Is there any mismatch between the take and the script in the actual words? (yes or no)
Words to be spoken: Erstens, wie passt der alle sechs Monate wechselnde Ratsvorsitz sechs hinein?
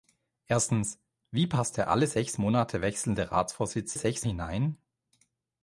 no